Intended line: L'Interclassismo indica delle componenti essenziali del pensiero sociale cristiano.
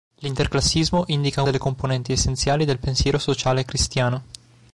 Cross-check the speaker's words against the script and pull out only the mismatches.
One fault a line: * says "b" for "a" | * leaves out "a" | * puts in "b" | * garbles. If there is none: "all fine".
all fine